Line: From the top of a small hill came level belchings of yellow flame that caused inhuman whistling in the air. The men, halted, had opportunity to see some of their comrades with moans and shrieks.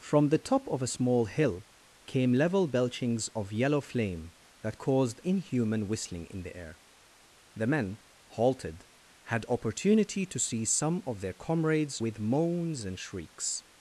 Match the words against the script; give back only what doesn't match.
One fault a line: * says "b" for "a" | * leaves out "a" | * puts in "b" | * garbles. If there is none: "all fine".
all fine